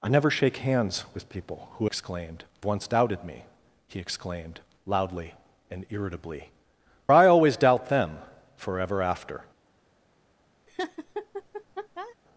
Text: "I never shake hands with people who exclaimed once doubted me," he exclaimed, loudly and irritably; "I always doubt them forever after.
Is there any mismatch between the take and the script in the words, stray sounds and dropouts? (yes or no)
yes